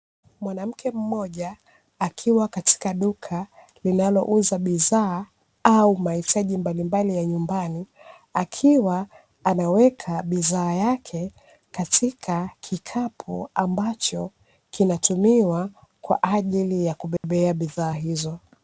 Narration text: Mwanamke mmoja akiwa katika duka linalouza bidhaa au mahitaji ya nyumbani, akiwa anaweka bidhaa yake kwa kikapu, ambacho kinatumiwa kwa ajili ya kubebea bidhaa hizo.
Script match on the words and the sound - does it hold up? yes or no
no